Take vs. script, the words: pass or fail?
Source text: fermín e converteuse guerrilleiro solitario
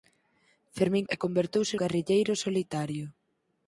pass